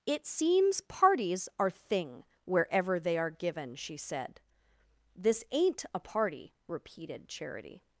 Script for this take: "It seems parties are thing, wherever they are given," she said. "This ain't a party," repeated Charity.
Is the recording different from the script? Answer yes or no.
no